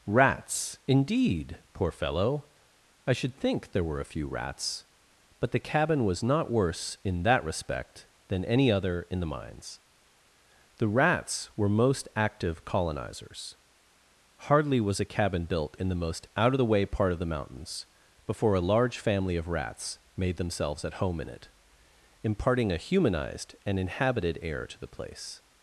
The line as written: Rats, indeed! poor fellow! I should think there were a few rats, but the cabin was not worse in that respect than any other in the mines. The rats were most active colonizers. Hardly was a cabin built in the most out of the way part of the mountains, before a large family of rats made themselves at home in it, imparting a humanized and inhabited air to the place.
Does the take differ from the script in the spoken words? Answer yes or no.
no